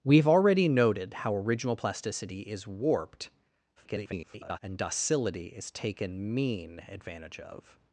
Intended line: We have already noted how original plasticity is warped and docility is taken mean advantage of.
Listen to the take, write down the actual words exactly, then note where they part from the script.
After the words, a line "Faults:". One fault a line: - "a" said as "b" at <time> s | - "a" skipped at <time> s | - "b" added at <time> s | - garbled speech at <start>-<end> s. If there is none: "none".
We have already noted how original plasticity is warped [garbled] and docility is taken mean advantage of.
Faults:
- garbled speech at 3.8-4.6 s